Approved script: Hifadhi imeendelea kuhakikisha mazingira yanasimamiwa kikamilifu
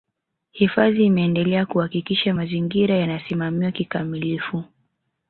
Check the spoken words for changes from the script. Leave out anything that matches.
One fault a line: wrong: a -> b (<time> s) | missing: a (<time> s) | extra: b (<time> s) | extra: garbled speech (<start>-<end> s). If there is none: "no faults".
no faults